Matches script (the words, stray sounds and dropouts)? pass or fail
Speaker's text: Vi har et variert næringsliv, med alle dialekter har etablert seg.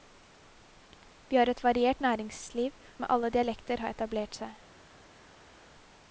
pass